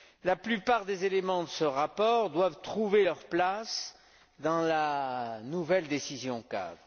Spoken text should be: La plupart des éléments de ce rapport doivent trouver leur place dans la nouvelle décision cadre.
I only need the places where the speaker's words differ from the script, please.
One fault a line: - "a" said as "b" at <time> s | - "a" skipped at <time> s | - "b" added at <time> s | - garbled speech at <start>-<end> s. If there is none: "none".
none